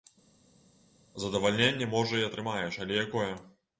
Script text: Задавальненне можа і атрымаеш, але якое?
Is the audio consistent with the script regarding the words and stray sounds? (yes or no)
yes